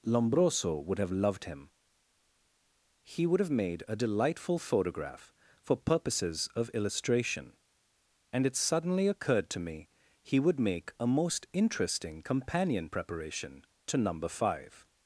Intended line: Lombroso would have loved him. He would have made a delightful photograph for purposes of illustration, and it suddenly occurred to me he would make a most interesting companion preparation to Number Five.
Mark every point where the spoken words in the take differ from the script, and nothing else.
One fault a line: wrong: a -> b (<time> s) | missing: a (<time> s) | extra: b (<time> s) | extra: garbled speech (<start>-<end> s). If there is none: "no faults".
no faults